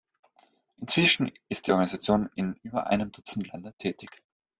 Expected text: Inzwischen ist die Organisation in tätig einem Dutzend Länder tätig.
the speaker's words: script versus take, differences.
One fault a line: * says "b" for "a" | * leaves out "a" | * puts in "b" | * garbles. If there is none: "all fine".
* says "über" for "tätig"